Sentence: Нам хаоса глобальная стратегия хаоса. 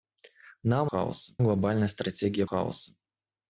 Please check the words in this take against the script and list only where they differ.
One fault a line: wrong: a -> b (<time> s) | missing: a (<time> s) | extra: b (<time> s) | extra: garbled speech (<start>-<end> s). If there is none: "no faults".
no faults